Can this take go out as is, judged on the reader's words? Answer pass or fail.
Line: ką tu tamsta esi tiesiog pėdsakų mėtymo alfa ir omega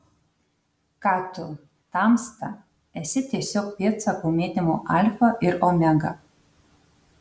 pass